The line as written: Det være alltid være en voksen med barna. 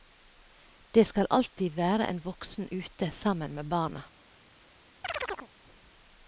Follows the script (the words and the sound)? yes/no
no